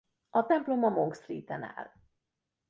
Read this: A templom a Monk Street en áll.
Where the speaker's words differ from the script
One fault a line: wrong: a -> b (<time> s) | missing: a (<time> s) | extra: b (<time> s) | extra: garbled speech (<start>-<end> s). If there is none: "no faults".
no faults